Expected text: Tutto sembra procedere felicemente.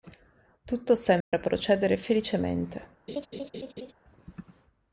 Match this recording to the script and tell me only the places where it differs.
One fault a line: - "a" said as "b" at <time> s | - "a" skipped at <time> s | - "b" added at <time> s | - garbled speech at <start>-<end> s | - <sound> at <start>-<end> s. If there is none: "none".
- dropout at 1.2-1.3 s
- laugh at 3.1-3.9 s